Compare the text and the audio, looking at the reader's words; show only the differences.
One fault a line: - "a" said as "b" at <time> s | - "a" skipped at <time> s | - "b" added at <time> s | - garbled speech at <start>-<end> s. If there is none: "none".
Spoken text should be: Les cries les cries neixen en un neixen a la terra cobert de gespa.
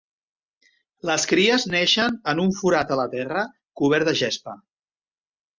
- "les cries" skipped at 1.7 s
- "neixen" said as "forat" at 2.6 s